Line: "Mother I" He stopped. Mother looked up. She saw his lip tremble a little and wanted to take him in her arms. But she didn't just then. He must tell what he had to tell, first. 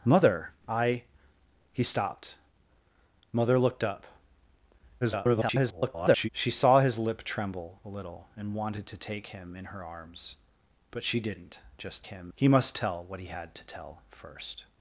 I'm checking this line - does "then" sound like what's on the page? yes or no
no